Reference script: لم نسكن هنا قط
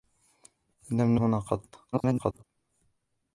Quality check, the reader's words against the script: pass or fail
fail